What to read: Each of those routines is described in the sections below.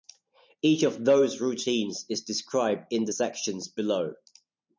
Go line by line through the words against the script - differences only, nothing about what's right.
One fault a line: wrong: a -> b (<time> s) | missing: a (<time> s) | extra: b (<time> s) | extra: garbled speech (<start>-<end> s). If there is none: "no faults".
no faults